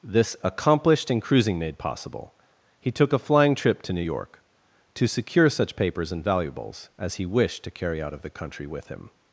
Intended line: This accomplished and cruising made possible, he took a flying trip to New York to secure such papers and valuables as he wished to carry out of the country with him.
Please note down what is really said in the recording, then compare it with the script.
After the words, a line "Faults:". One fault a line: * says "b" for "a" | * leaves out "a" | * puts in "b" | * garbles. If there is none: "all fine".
This accomplished and cruising made possible, he took a flying trip to New York to secure such papers and valuables as he wished to carry out of the country with him.
Faults:
all fine